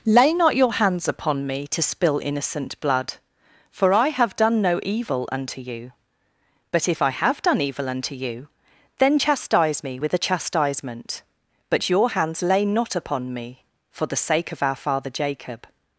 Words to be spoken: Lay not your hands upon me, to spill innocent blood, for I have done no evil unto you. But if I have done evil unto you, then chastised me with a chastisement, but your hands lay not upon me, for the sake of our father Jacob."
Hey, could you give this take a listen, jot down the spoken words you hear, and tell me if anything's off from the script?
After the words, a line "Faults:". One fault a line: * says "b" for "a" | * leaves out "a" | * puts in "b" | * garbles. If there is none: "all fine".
Lay not your hands upon me, to spill innocent blood, for I have done no evil unto you. But if I have done evil unto you, then chastise me with a chastisement, but your hands lay not upon me, for the sake of our father Jacob."
Faults:
* says "chastise" for "chastised"